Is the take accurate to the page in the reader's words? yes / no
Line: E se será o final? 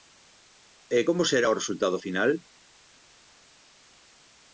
no